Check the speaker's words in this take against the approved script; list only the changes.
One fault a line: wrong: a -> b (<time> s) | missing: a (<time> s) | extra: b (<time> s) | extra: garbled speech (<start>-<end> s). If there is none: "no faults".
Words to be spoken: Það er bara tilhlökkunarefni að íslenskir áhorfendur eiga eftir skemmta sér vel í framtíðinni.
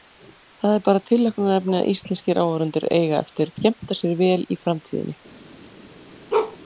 no faults